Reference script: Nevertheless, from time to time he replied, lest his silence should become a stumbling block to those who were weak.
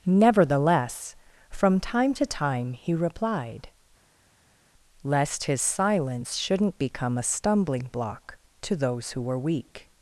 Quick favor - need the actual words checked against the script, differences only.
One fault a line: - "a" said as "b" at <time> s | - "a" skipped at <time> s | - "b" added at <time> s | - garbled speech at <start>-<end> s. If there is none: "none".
- "should" said as "shouldn't" at 6.4 s